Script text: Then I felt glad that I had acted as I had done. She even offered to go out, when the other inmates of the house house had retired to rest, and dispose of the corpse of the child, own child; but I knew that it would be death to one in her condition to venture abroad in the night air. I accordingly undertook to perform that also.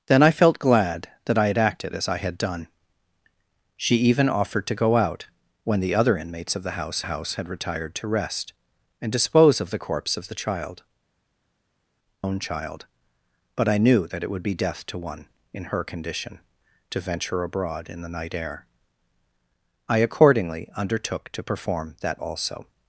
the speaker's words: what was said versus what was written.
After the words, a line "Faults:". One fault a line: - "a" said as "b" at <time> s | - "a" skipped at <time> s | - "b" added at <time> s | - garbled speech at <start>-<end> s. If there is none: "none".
Then I felt glad that I had acted as I had done. She even offered to go out, when the other inmates of the house house had retired to rest, and dispose of the corpse of the child, own child; but I knew that it would be death to one in her condition to venture abroad in the night air. I accordingly undertook to perform that also.
Faults:
none